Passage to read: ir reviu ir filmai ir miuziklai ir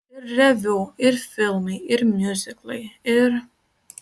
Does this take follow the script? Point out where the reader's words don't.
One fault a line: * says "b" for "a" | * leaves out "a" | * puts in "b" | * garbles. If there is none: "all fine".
all fine